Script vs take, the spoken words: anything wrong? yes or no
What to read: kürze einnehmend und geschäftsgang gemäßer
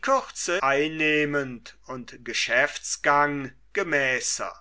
no